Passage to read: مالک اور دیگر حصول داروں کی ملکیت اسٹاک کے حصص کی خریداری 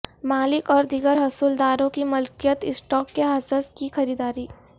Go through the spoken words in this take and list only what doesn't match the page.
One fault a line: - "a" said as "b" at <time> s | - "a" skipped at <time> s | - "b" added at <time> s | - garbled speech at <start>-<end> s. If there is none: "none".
none